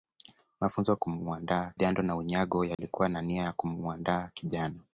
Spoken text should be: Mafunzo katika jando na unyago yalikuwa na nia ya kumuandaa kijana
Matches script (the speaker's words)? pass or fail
fail